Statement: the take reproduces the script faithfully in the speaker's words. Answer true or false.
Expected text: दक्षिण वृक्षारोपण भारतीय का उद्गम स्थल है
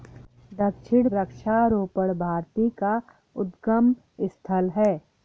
true